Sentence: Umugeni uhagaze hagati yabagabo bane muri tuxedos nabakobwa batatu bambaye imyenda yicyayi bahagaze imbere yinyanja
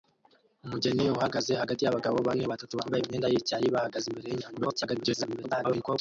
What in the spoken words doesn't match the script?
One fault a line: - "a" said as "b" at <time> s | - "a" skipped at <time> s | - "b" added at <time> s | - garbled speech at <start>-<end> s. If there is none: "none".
- "muri tuxedos nabakobwa" skipped at 2.4 s
- garbled speech at 4.5-6.0 s